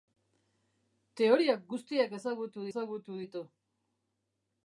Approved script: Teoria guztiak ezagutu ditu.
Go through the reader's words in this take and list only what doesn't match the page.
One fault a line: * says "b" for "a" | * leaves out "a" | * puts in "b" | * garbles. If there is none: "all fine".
* puts in "ezagutu"